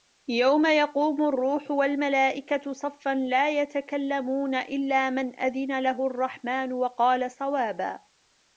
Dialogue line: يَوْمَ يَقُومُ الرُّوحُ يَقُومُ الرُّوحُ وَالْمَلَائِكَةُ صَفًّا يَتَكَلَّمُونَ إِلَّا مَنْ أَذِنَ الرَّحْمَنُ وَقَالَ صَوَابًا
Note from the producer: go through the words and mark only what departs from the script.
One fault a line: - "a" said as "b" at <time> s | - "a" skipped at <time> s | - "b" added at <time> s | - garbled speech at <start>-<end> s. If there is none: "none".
- "يَقُومُ الرُّوحُ" skipped at 1.7 s
- "لَا" added at 3.1 s
- "لَهُ" added at 5.8 s